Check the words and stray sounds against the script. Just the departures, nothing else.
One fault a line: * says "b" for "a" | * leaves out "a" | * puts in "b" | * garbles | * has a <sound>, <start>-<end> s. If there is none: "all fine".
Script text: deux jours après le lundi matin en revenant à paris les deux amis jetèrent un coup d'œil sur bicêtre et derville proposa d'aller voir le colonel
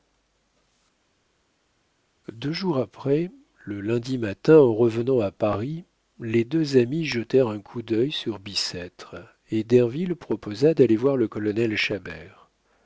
all fine